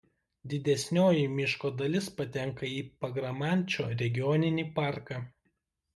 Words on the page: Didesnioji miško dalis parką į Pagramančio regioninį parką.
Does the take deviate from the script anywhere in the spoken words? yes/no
yes